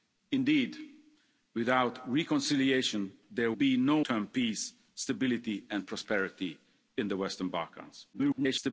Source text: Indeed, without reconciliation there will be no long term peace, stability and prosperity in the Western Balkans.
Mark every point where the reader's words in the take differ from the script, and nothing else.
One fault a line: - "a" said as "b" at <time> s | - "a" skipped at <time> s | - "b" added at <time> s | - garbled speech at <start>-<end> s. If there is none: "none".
- "will" skipped at 3.5 s
- "long" skipped at 4.0 s
- garbled speech at 8.1-8.7 s